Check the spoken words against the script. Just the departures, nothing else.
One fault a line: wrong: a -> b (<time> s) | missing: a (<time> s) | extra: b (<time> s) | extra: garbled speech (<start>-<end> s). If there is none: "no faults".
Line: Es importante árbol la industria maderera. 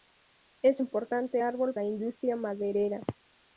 no faults